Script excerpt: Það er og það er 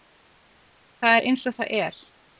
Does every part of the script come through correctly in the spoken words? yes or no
no